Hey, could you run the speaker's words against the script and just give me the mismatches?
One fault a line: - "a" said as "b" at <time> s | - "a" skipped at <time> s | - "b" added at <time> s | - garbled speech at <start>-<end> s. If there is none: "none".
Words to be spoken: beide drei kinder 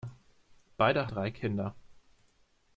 none